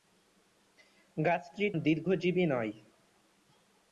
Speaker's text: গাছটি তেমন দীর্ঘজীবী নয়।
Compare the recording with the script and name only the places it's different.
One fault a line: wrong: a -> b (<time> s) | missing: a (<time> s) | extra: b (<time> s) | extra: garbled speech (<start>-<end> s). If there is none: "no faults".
missing: তেমন (1.6 s)